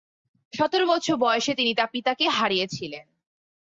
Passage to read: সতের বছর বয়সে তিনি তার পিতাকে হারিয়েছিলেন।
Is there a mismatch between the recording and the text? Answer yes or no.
no